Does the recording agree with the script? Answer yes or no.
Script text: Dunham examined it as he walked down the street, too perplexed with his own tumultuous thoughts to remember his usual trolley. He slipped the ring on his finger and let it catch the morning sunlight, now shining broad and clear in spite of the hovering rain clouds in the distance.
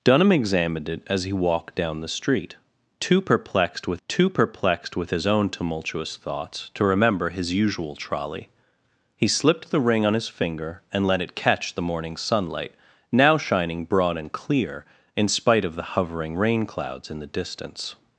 no